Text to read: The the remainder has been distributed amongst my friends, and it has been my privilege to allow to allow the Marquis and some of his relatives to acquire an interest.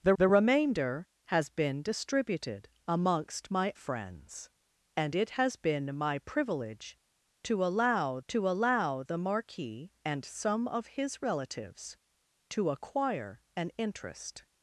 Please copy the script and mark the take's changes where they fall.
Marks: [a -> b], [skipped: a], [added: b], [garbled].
The the remainder has been distributed amongst my friends, and it has been my privilege to allow to allow the Marquis and some of his relatives to acquire an interest.